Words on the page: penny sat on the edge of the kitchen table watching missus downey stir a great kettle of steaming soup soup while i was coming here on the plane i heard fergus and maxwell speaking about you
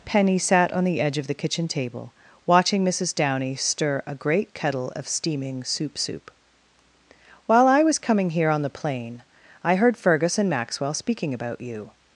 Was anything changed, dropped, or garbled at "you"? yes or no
no